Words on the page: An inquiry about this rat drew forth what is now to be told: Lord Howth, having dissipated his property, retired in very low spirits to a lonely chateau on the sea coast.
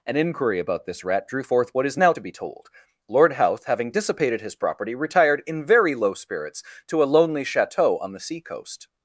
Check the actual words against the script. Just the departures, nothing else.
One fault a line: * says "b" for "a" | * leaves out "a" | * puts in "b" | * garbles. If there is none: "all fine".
all fine